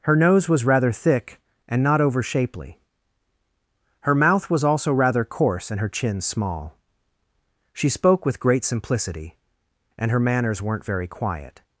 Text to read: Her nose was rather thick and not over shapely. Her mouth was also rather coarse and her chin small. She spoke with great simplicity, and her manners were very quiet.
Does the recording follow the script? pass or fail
fail